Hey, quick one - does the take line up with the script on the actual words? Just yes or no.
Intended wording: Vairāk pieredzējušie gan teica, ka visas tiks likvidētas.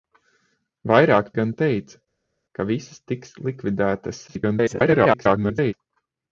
no